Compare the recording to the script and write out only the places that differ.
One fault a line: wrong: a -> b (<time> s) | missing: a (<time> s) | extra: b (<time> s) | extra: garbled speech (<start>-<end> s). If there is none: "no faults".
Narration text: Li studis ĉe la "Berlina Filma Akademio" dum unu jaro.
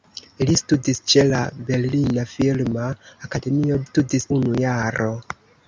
wrong: dum -> studis (3.9 s)